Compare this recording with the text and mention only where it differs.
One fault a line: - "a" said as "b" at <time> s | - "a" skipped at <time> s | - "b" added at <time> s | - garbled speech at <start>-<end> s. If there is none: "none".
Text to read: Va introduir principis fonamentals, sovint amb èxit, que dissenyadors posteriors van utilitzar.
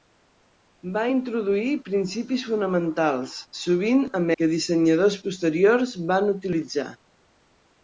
- "èxit" skipped at 4.3 s